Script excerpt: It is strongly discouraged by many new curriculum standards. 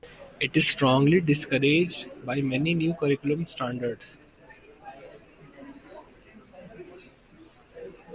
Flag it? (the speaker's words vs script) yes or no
no